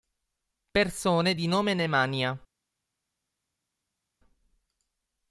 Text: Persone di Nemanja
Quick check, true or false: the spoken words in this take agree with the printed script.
false